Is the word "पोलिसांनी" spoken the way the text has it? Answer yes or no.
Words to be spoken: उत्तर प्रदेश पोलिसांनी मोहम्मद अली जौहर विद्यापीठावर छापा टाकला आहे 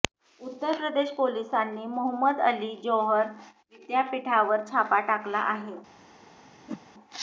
yes